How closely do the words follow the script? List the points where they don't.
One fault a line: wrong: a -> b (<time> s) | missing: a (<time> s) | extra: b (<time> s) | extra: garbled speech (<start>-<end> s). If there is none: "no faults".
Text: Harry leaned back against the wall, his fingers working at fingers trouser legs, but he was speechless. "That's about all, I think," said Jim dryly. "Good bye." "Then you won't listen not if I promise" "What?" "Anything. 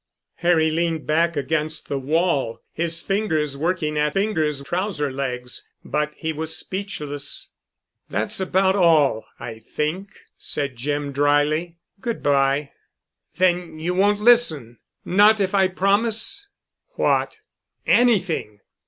no faults